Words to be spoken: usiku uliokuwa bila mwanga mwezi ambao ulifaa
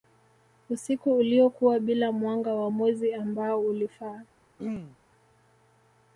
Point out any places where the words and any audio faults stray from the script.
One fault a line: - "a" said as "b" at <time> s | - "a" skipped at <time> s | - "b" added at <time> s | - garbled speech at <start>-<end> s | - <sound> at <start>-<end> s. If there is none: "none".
- "wa" added at 2.5 s
- throat clearing at 4.6-5.0 s